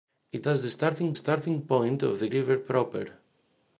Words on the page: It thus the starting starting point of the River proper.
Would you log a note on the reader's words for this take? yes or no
no